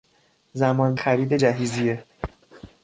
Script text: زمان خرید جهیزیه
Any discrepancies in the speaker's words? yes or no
no